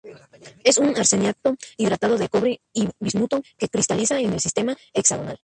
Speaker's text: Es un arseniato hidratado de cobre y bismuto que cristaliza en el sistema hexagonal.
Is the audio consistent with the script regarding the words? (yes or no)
yes